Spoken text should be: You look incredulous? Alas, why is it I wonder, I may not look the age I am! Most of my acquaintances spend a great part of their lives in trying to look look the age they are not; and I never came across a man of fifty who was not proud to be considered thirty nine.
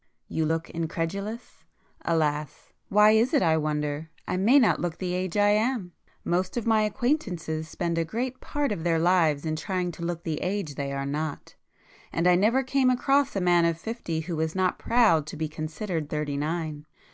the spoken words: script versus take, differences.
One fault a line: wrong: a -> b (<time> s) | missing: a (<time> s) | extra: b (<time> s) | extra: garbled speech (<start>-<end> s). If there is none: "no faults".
missing: look (10.2 s)